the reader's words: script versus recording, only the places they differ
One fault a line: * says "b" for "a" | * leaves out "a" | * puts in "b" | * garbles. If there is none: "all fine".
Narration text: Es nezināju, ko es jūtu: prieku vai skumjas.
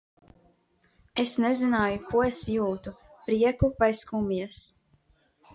all fine